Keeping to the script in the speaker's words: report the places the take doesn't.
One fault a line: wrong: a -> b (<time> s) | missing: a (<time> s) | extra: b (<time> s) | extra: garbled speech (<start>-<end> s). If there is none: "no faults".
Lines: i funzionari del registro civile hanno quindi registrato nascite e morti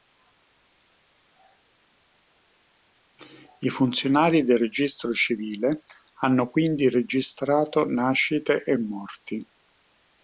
no faults